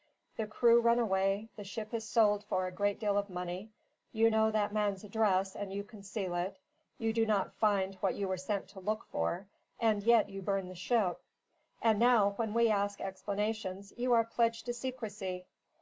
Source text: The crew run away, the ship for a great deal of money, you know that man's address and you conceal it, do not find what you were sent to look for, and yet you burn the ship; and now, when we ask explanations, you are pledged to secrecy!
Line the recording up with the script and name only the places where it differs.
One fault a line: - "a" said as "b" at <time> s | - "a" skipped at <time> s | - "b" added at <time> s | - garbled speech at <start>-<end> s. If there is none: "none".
- "is sold" added at 1.9 s
- "you" added at 7.0 s